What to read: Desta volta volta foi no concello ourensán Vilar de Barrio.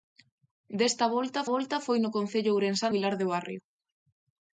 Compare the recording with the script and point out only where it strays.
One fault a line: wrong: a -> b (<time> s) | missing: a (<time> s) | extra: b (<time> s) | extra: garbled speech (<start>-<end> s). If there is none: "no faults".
no faults